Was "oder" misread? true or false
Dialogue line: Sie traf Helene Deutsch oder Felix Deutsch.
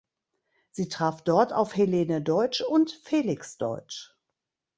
true